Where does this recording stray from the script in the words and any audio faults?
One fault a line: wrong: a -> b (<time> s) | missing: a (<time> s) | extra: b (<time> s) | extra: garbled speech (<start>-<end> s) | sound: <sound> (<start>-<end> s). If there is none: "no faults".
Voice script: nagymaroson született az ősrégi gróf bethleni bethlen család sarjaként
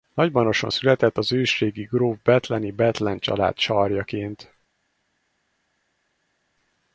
no faults